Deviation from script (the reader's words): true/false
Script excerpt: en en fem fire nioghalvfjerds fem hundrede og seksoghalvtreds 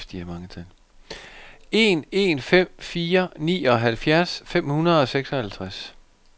false